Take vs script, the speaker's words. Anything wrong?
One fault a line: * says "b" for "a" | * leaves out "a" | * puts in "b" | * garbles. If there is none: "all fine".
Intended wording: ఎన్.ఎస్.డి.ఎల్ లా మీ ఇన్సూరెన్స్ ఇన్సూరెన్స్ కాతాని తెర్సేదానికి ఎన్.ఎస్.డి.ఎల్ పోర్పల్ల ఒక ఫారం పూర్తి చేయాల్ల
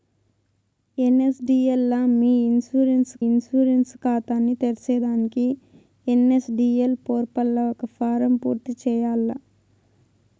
all fine